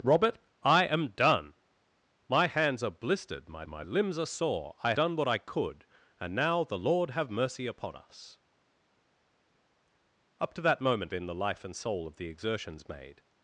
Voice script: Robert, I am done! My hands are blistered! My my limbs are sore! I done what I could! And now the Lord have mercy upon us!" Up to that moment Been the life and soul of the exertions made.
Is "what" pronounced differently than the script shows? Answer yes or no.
no